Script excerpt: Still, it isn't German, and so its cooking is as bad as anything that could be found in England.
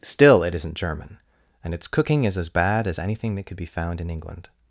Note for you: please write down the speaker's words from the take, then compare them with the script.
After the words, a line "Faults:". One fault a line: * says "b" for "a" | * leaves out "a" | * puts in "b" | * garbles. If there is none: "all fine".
Still, it isn't German, and its cooking is as bad as anything that could be found in England.
Faults:
* leaves out "so"